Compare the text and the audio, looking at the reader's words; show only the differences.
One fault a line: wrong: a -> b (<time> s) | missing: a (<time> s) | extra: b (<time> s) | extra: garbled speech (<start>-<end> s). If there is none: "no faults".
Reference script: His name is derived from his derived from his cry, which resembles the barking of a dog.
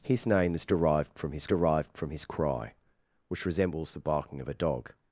no faults